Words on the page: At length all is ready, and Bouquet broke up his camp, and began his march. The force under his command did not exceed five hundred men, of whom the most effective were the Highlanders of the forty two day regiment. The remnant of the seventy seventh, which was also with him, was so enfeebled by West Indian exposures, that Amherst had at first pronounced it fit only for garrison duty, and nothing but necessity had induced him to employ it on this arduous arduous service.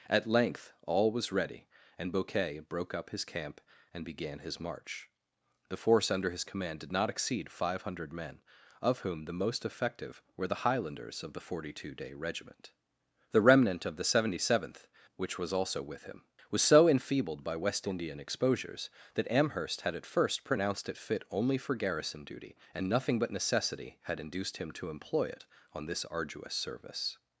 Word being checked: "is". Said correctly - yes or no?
no